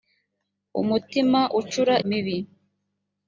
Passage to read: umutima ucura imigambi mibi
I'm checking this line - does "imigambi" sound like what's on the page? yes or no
no